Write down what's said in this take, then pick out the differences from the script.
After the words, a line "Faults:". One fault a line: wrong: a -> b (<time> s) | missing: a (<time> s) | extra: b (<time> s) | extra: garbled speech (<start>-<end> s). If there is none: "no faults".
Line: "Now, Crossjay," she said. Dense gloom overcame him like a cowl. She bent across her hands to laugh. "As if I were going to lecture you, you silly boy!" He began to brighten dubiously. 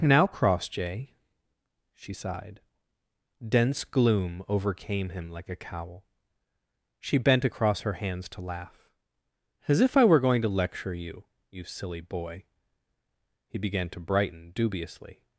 "Now, Crossjay," she sighed. Dense gloom overcame him like a cowl. She bent across her hands to laugh. "As if I were going to lecture you, you silly boy!" He began to brighten dubiously.
Faults:
wrong: said -> sighed (2.1 s)